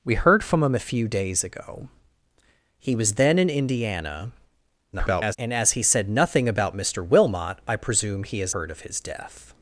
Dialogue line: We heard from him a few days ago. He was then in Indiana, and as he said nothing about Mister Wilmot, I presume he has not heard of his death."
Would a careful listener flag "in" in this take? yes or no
no